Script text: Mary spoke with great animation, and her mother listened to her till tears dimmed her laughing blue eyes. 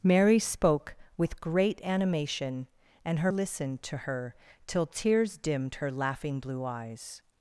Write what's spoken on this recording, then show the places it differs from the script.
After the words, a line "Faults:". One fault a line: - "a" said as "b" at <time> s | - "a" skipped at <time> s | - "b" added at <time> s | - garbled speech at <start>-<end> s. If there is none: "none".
Mary spoke with great animation, and her listened to her till tears dimmed her laughing blue eyes.
Faults:
- "mother" skipped at 3.3 s